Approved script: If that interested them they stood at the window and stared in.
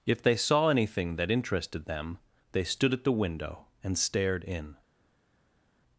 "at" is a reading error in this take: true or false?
false